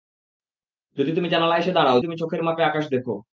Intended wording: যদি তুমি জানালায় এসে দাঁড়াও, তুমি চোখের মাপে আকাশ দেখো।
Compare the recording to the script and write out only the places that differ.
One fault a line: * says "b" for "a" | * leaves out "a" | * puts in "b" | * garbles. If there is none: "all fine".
all fine